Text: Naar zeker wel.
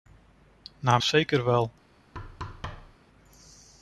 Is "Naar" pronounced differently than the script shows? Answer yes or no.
no